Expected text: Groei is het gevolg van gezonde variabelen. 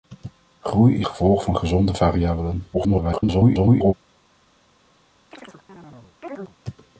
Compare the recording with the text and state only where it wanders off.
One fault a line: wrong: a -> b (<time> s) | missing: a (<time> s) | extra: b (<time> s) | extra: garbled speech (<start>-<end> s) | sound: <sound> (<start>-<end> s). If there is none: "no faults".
missing: het (1.1 s)
extra: garbled speech (2.7-3.9 s)
sound: chirp (5.3-6.6 s)